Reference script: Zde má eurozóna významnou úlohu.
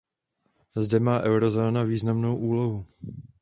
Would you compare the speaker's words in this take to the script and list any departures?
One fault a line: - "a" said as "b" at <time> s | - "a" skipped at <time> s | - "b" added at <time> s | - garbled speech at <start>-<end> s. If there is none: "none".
none